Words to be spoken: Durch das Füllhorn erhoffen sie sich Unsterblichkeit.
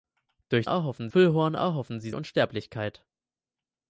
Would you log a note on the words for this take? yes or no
yes